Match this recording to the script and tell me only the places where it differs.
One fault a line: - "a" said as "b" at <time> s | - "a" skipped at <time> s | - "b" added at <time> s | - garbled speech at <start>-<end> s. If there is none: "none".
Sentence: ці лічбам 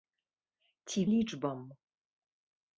none